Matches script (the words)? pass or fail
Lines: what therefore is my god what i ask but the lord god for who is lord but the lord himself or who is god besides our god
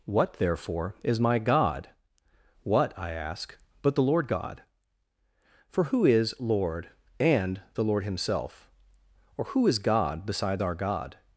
fail